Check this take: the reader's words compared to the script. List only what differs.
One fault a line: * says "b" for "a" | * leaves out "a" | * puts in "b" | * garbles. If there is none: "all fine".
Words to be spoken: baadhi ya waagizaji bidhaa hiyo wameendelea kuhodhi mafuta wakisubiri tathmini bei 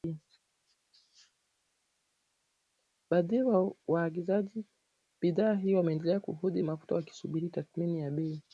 * puts in "ya"